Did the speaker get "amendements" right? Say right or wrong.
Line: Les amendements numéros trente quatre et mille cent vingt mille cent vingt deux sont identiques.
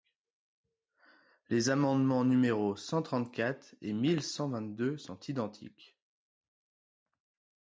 right